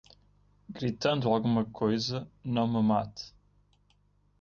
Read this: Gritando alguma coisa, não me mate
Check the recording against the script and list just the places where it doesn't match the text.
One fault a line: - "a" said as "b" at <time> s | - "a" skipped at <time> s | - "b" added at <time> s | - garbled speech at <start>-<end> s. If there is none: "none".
none